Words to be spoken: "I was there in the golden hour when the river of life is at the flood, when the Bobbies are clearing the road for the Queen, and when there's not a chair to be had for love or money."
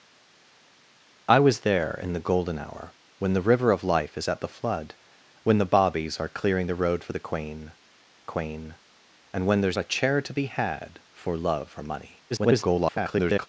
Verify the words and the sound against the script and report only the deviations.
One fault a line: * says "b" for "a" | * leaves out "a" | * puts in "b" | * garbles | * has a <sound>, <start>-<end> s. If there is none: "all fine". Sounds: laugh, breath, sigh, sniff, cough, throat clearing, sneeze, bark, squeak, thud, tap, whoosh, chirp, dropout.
* puts in "Queen"
* leaves out "not"
* garbles